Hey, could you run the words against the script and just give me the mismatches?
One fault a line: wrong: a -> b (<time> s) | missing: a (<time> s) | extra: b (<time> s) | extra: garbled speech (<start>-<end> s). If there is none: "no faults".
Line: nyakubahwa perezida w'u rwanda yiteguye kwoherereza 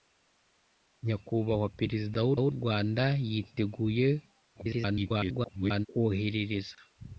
extra: w'u (2.4 s)
extra: garbled speech (4.5-5.9 s)